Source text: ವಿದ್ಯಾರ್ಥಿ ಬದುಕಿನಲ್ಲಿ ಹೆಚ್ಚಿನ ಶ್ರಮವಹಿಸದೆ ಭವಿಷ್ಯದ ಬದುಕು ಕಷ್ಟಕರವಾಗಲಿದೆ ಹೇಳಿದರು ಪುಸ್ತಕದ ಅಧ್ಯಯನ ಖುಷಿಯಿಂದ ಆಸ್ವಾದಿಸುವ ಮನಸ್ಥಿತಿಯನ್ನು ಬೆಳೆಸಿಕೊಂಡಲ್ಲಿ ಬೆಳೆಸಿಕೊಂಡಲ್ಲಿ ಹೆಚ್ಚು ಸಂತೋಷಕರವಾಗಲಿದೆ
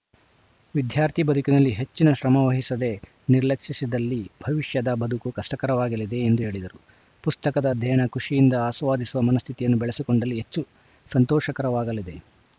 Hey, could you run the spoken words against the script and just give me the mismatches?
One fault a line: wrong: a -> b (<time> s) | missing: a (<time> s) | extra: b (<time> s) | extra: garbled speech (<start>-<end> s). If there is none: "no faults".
extra: ನಿರ್ಲಕ್ಷಿಸಿದಲ್ಲಿ (3.3 s)
extra: ಎಂದು (6.2 s)
missing: ಬೆಳೆಸಿಕೊಂಡಲ್ಲಿ (10.4 s)